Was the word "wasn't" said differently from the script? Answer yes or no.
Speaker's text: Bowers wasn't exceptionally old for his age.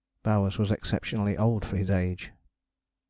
yes